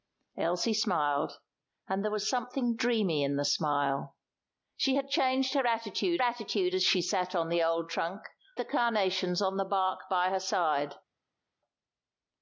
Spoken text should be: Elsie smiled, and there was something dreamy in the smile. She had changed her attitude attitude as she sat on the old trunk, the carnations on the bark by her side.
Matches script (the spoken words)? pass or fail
pass